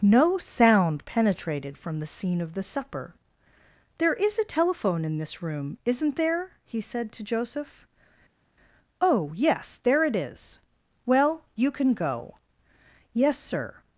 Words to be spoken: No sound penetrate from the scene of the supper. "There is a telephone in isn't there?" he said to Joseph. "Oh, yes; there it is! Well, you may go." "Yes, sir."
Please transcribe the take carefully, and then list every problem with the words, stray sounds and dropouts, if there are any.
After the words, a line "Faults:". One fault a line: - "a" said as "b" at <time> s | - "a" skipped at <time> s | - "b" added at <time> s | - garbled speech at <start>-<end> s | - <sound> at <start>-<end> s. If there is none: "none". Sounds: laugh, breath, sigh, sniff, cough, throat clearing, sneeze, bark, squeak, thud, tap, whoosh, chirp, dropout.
No sound penetrated from the scene of the supper. "There is a telephone in this room, isn't there?" he said to Joseph. "Oh, yes; there it is! Well, you can go." "Yes, sir."
Faults:
- "penetrate" said as "penetrated" at 1.1 s
- "this room" added at 5.2 s
- "may" said as "can" at 11.7 s